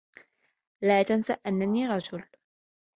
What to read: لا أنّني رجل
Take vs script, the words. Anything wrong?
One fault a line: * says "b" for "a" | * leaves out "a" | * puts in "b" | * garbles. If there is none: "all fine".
* puts in "تنس"